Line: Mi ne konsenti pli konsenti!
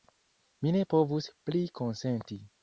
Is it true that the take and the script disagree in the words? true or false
true